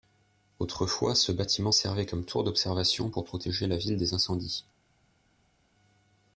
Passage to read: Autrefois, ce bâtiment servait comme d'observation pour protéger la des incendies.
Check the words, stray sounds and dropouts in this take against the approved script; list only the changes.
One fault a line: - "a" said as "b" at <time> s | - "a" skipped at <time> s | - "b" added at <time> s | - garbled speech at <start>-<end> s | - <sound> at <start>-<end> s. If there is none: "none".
- "tour" added at 2.2 s
- "ville" added at 3.8 s